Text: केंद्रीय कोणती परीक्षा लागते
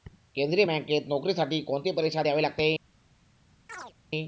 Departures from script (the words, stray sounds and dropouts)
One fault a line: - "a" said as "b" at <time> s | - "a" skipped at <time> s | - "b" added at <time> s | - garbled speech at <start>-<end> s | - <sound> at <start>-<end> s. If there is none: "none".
- "बँकेत नोकरीसाठी" added at 0.6 s
- "द्यावी" added at 2.2 s
- chirp at 3.7-3.9 s